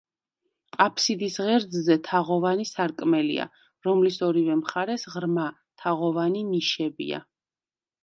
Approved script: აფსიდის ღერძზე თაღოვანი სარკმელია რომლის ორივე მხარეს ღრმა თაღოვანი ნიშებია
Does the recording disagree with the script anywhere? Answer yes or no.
no